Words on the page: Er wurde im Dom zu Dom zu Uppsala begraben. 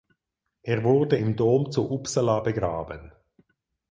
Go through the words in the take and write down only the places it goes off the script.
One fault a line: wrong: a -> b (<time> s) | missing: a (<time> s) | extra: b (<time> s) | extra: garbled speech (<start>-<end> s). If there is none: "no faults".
missing: Dom zu (1.9 s)